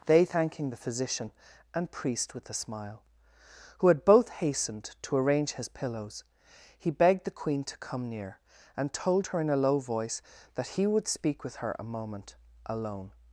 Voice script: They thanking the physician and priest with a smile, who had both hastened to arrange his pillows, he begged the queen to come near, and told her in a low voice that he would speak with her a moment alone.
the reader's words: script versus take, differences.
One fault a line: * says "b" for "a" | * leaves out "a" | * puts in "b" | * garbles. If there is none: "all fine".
all fine